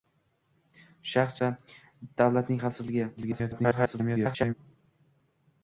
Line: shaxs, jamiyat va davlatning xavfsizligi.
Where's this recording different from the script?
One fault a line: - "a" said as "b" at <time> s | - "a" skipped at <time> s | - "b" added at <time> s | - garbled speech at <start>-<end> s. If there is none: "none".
- "jamiyat" skipped at 1.4 s
- garbled speech at 3.2-4.5 s